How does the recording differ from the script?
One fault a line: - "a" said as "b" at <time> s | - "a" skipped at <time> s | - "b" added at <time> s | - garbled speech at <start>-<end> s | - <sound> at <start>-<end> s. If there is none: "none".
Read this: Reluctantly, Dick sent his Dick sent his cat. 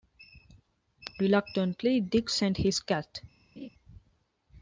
- "Dick sent his" skipped at 2.8 s
- laugh at 3.6-3.7 s